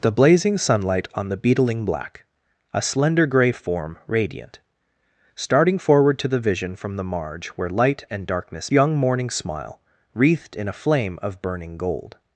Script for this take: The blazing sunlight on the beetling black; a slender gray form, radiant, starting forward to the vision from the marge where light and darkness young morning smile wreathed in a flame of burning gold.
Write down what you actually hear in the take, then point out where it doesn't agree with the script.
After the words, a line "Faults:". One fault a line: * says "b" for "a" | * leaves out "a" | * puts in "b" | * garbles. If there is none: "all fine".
The blazing sunlight on the beetling black; a slender gray form, radiant, starting forward to the vision from the marge where light and darkness young morning smile wreathed in a flame of burning gold.
Faults:
all fine